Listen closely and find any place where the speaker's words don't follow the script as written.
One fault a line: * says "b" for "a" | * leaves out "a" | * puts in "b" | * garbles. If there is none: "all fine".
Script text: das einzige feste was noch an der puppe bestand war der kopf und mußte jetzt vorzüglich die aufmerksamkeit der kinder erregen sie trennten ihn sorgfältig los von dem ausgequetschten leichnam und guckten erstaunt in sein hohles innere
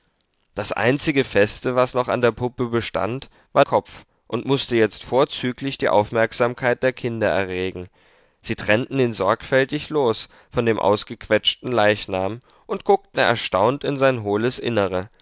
* leaves out "der"